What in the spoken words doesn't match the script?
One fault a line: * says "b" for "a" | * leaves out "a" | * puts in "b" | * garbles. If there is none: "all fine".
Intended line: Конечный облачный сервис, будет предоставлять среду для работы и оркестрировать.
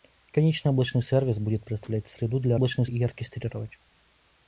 * says "облачный" for "работы"